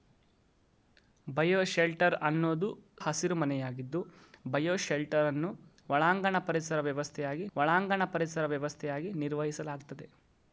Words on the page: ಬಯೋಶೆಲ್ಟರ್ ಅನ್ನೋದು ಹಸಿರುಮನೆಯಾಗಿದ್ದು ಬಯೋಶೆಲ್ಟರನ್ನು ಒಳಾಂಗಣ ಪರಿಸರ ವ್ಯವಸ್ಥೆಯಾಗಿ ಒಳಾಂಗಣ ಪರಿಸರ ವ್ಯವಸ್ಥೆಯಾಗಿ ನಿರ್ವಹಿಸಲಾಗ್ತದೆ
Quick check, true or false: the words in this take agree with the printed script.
true